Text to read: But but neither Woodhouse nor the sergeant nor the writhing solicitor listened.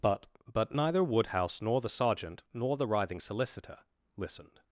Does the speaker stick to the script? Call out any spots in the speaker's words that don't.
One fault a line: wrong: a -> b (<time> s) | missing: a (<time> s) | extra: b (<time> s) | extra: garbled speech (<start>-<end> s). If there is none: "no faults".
no faults